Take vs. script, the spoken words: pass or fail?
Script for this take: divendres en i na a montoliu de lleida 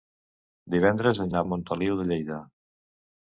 pass